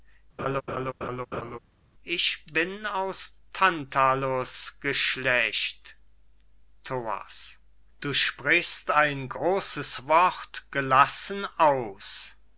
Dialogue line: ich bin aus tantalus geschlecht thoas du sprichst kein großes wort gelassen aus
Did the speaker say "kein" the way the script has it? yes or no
no